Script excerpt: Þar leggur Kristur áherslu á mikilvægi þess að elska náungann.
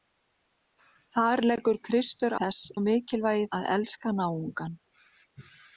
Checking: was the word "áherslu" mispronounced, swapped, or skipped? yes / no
yes